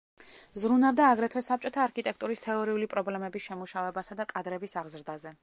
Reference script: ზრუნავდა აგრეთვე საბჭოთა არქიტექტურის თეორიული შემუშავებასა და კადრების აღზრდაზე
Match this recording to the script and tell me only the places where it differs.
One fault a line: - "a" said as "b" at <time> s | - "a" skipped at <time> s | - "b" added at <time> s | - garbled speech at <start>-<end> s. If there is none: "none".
- "პრობლემების" added at 3.0 s